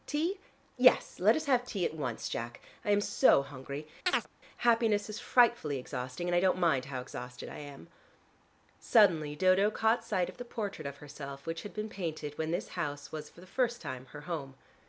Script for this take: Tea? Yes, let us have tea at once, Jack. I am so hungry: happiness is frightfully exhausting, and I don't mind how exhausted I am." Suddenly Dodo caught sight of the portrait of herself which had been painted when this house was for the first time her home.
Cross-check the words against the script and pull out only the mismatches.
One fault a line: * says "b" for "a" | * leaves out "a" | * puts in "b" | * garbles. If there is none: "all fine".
all fine